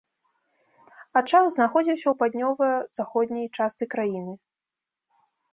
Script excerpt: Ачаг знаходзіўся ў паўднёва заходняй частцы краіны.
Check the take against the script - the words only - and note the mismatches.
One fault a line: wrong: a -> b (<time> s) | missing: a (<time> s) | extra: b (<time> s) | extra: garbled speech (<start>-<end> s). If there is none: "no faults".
no faults